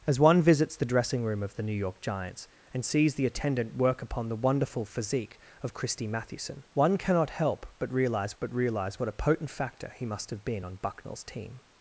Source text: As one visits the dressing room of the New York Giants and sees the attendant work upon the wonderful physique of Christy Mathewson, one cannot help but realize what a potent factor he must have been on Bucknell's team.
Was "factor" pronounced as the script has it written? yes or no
yes